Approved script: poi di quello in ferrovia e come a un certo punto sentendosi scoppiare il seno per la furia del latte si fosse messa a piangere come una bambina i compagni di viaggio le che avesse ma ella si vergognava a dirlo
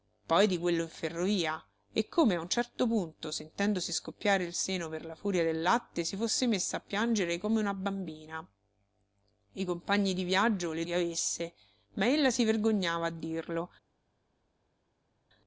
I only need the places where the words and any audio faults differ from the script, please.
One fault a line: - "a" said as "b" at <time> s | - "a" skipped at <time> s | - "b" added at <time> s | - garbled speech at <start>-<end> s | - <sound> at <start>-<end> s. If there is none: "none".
none